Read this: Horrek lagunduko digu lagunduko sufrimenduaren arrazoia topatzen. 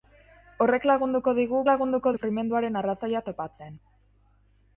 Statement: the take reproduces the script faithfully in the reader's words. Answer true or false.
true